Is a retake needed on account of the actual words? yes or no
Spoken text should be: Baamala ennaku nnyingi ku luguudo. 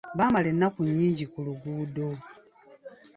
no